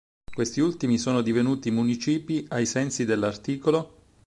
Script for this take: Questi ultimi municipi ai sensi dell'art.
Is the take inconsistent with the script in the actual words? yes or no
yes